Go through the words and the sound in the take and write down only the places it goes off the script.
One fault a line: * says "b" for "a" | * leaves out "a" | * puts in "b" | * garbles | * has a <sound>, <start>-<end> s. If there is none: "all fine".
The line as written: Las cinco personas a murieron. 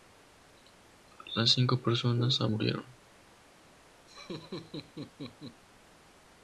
* has a laugh, 4.1-5.6 s